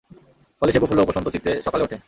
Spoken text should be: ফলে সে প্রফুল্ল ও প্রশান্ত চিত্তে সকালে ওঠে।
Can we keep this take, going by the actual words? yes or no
yes